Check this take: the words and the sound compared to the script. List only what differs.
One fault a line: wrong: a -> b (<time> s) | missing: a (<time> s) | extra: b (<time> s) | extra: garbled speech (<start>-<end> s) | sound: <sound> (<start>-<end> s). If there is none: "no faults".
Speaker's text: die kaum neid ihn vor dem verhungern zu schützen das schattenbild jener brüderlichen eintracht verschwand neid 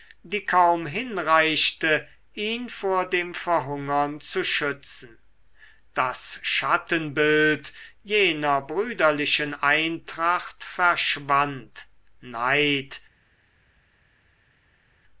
wrong: neid -> hinreichte (0.9 s)